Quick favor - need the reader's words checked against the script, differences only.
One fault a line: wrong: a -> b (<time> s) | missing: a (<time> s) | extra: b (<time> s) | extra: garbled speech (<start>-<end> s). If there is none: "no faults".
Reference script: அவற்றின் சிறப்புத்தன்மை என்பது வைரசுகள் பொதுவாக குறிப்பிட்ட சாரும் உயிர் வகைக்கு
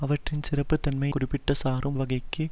missing: என்பது வைரசுகள் பொதுவாக (1.1 s)
missing: உயிர் (2.0 s)